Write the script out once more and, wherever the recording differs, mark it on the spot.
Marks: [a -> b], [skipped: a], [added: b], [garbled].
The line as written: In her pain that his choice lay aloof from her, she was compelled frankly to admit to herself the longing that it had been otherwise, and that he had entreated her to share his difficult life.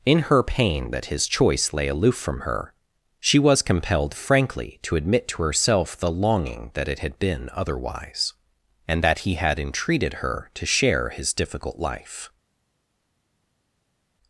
In her pain that his choice lay aloof from her, she was compelled frankly to admit to herself the longing that it had been otherwise, and that he had entreated her to share his difficult life.